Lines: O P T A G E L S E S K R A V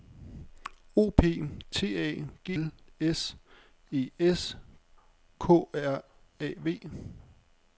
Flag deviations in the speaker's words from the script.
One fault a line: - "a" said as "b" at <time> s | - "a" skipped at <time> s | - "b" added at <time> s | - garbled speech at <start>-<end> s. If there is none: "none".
- "E" skipped at 2.5 s